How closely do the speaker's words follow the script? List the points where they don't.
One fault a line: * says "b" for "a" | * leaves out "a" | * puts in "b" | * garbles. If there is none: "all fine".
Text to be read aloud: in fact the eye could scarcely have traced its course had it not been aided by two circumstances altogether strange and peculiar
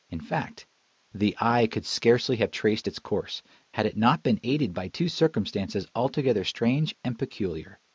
all fine